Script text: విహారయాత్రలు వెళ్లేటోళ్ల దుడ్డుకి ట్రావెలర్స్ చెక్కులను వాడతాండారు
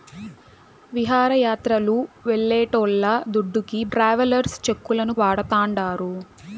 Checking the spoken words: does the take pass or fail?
pass